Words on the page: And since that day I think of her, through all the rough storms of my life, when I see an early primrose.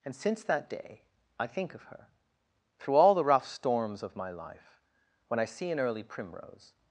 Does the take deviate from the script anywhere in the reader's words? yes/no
no